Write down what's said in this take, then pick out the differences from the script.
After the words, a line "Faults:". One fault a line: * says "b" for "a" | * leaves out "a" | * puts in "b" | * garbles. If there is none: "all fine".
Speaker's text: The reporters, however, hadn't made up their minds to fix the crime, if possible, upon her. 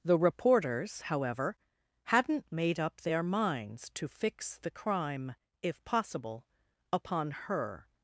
The reporters, however, hadn't made up their minds to fix the crime, if possible, upon her.
Faults:
all fine